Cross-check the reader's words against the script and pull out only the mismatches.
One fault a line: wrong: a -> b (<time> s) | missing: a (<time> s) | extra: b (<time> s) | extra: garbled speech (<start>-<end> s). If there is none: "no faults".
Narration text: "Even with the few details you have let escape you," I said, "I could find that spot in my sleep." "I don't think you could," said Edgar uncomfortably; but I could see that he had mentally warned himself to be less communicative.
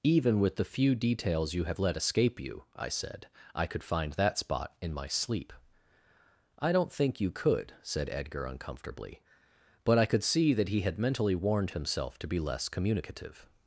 no faults